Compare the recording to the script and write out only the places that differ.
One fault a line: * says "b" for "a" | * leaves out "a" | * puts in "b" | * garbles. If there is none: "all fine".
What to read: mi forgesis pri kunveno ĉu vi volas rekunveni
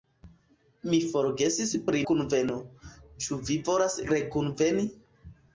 all fine